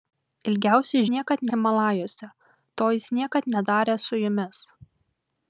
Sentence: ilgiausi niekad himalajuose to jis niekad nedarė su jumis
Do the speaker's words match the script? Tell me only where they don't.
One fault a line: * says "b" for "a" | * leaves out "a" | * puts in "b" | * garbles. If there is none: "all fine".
all fine